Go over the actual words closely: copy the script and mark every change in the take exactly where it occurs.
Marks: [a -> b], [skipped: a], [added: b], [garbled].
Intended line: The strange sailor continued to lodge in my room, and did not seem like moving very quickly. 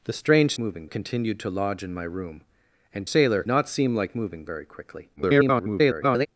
The strange [sailor -> moving] continued to lodge in my room, and [did -> sailor] not seem like moving very quickly. [garbled]